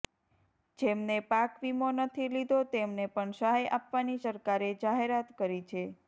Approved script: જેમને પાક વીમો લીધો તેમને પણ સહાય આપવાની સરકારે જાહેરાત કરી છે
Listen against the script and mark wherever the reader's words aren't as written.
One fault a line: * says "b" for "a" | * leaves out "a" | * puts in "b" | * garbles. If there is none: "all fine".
* puts in "નથી"